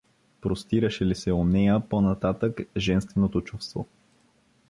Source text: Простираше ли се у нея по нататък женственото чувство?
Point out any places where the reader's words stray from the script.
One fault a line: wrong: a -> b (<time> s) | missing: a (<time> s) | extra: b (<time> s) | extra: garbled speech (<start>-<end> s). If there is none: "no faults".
no faults